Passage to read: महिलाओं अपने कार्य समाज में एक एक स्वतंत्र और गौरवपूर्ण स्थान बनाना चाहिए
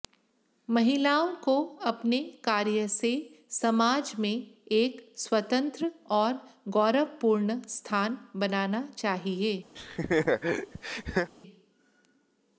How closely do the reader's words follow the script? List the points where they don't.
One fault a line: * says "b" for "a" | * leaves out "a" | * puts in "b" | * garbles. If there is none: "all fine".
* puts in "को"
* puts in "से"
* leaves out "एक"